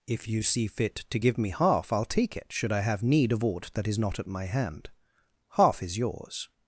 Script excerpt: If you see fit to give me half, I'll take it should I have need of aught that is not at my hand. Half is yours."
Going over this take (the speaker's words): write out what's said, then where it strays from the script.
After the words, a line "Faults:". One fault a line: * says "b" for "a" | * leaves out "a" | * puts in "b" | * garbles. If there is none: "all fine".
If you see fit to give me half, I'll take it should I have need of aught that is not at my hand. Half is yours."
Faults:
all fine